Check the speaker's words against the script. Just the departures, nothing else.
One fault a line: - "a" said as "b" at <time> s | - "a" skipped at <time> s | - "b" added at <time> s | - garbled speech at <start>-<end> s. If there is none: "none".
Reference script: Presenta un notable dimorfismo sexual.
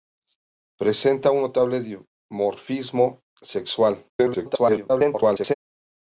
- garbled speech at 4.1-5.5 s